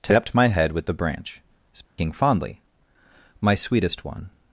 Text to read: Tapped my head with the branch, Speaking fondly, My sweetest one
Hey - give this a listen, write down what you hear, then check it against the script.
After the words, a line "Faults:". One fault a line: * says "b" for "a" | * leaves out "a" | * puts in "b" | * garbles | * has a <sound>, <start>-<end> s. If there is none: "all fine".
Tapped my head with the branch, Speaking fondly, My sweetest one
Faults:
* has a dropout, 1.8-2.0 s